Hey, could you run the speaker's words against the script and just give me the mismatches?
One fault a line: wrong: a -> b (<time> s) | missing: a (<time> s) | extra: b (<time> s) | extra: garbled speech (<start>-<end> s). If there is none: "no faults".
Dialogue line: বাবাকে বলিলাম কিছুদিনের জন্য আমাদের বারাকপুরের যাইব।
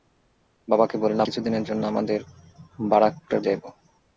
no faults